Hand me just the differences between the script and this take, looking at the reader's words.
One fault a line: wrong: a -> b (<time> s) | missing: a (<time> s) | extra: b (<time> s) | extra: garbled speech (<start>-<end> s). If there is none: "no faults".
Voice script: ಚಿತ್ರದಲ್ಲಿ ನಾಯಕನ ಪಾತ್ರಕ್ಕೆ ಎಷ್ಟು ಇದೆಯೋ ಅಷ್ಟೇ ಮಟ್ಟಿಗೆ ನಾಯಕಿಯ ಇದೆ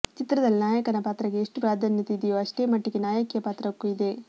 extra: ಪ್ರಾಧಾನ್ಯತೆ (1.6 s)
extra: ಪಾತ್ರಕ್ಕೂ (3.4 s)